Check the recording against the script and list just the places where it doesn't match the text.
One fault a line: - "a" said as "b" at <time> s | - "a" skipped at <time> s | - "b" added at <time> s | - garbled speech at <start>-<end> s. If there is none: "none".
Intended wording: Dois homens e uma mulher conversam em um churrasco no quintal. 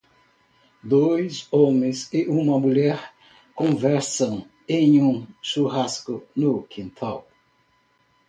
none